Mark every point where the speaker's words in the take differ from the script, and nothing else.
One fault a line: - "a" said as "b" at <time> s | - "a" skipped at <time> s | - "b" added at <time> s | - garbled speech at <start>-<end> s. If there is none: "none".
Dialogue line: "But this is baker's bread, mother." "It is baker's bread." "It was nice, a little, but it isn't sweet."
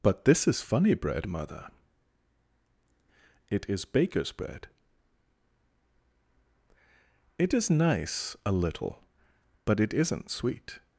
- "baker's" said as "funny" at 0.6 s
- "was" said as "is" at 7.5 s